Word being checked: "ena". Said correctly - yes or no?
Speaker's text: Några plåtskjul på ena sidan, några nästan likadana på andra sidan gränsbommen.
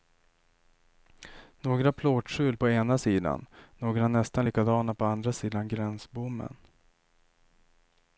yes